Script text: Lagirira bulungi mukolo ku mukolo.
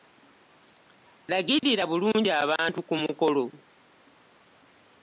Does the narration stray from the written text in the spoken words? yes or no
yes